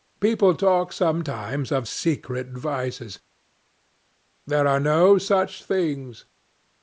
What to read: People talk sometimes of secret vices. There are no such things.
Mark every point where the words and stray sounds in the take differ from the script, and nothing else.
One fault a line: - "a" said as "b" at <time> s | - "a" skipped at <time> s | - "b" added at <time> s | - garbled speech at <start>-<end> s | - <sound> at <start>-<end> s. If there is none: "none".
none